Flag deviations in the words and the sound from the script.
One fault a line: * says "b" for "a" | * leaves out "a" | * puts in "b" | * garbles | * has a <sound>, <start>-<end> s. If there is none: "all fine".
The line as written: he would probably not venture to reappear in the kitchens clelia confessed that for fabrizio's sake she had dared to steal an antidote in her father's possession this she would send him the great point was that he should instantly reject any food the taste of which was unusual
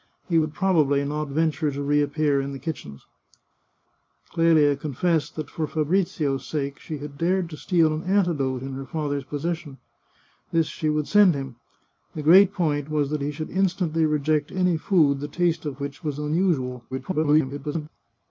* garbles